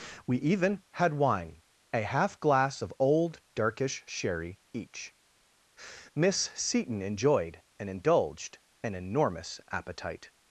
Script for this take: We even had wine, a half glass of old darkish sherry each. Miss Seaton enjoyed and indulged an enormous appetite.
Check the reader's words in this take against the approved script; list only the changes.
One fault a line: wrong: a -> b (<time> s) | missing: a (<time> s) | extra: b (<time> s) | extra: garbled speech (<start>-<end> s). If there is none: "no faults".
no faults